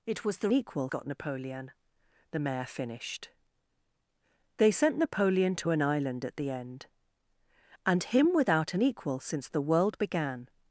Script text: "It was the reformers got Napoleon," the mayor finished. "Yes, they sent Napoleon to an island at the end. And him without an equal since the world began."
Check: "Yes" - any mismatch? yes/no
yes